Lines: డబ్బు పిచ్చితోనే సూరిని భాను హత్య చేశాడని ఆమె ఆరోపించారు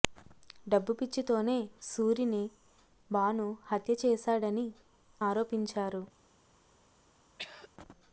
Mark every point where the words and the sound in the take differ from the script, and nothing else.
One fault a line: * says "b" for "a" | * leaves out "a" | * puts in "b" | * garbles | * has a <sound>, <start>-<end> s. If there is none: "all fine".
* leaves out "ఆమె"
* has a throat clearing, 7.4-7.7 s